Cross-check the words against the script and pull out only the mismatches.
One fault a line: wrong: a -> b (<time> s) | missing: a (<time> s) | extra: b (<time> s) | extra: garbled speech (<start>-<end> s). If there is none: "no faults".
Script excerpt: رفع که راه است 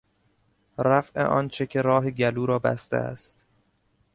extra: آنچه (1.2 s)
extra: گلو را بسته (2.1 s)